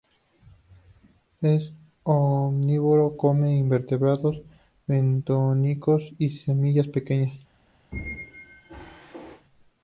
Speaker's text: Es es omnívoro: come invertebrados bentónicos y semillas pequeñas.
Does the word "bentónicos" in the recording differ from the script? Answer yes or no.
no